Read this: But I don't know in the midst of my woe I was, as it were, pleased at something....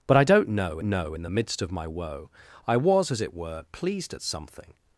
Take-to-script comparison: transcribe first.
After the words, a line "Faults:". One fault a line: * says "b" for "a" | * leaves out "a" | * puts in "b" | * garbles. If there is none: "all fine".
But I don't know know in the midst of my woe I was, as it were, pleased at something....
Faults:
* puts in "know"